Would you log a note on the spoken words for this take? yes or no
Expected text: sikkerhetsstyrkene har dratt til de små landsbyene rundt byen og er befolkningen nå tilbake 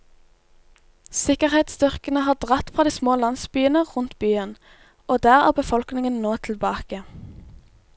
yes